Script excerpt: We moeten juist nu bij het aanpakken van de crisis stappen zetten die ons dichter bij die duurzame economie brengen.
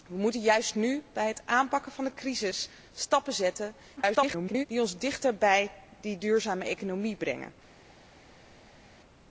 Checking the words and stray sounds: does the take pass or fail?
fail